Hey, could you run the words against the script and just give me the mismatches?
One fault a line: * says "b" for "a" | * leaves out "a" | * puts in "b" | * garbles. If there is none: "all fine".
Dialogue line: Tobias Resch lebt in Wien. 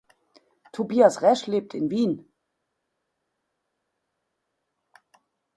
all fine